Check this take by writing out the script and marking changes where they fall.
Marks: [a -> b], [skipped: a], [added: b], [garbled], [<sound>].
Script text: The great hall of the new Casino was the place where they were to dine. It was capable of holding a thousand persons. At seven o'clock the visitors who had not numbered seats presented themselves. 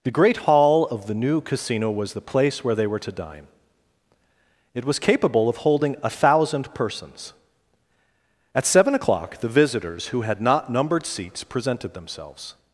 The great hall of the new Casino was the place where they were to dine. It was capable of holding a thousand persons. At seven o'clock the visitors who had not numbered seats presented themselves.